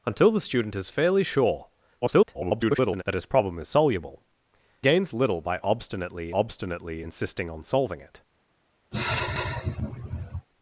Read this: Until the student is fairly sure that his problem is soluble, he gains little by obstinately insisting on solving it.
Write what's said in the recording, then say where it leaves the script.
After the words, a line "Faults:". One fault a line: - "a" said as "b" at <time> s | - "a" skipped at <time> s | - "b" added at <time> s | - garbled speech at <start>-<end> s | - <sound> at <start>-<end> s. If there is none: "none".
Until the student is fairly sure [garbled] that his problem is soluble, gains little by obstinately obstinately insisting on solving it.
Faults:
- garbled speech at 2.0-3.0 s
- "he" skipped at 4.2 s
- "obstinately" added at 6.3 s
- sigh at 8.9-10.5 s